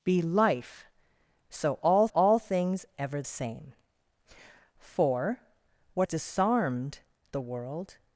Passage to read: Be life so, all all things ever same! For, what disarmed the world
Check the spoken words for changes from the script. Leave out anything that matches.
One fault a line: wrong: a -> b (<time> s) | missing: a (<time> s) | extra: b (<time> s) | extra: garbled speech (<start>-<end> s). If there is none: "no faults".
no faults